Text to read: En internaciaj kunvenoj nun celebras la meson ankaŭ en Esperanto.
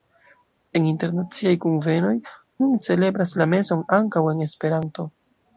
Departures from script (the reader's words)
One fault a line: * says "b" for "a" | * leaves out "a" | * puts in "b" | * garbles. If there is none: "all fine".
all fine